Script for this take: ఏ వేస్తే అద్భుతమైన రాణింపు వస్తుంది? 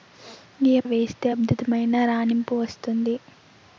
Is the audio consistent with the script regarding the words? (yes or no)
yes